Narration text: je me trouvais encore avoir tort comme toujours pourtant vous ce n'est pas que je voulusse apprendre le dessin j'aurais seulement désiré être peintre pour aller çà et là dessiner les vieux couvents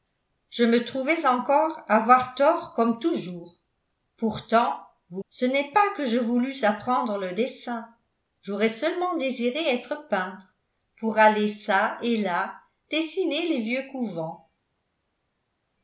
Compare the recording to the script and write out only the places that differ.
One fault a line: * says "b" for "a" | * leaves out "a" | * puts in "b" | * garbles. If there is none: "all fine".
all fine